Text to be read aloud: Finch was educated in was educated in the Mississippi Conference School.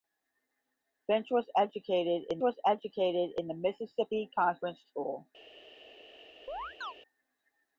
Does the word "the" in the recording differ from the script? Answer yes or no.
no